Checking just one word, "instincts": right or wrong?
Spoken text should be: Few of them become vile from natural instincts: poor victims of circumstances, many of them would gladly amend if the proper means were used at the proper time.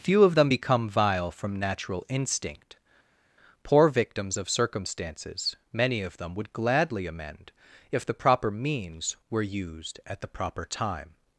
wrong